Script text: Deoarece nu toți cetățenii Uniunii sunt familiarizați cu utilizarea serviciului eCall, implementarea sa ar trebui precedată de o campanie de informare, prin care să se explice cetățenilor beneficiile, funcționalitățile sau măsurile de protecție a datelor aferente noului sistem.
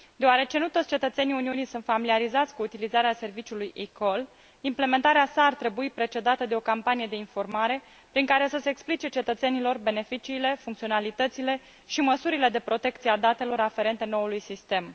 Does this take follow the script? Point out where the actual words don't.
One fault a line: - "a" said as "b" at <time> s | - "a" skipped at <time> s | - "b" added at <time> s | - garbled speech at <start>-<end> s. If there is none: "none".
- "sau" said as "și" at 11.8 s